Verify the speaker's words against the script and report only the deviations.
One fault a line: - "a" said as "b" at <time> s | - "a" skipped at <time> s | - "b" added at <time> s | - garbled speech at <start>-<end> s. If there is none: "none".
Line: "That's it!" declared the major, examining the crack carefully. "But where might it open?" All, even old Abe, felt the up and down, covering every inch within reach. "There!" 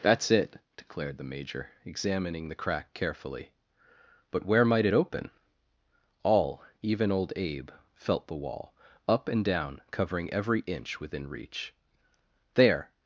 - "wall" added at 8.3 s